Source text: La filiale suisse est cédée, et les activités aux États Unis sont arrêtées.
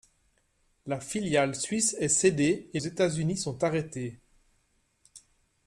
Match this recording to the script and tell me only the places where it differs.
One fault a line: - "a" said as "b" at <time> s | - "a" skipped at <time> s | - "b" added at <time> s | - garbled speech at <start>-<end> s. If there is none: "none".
- "les activités aux" skipped at 2.8 s